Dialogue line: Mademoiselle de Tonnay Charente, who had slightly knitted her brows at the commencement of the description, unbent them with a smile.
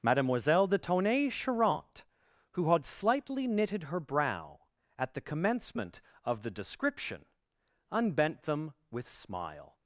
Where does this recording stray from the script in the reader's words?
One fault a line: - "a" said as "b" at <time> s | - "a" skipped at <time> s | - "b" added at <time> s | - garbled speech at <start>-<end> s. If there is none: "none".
- "brows" said as "brow" at 4.0 s
- "a" skipped at 9.1 s